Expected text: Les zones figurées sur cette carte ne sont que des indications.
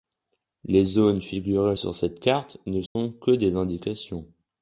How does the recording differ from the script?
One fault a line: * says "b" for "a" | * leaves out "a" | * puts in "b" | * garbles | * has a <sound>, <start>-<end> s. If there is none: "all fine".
* has a dropout, 2.9-3.0 s